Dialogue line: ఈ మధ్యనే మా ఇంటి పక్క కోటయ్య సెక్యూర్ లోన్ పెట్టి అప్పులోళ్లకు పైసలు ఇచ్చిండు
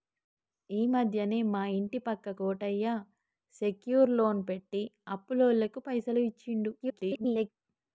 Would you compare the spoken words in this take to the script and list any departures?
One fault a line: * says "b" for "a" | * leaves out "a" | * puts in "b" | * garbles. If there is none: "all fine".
* garbles